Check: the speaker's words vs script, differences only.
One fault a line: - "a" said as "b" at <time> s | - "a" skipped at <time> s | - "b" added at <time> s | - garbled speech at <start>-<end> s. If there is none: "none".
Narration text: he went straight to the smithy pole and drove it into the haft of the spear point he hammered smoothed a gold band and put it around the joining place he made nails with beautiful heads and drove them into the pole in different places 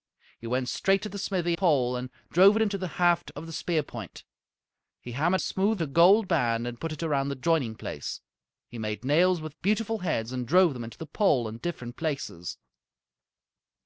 none